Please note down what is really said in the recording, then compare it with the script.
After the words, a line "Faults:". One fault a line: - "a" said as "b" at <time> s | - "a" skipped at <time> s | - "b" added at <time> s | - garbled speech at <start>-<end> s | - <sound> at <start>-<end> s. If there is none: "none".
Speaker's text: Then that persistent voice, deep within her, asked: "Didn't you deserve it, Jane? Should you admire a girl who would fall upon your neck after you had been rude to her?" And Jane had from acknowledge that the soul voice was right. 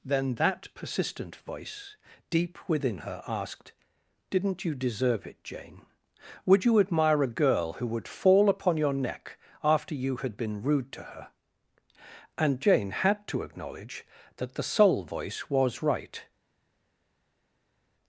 Then that persistent voice, deep within her, asked: "Didn't you deserve it, Jane? Would you admire a girl who would fall upon your neck after you had been rude to her?" And Jane had to acknowledge that the soul voice was right.
Faults:
- "Should" said as "Would" at 6.4 s
- "from" said as "to" at 13.3 s